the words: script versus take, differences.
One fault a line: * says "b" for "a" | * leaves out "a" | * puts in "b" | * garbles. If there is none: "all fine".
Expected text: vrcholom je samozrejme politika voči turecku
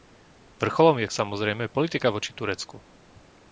all fine